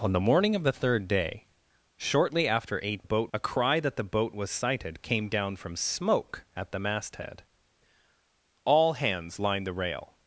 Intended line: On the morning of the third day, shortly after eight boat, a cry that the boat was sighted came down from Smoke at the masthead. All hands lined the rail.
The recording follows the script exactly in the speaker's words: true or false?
true